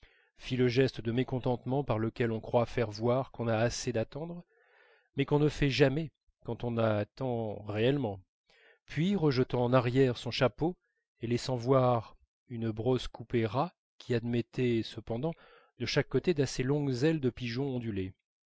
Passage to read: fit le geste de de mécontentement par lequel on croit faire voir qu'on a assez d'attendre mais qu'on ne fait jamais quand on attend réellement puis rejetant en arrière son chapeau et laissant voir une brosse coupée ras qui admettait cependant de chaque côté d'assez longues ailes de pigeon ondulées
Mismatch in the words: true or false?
true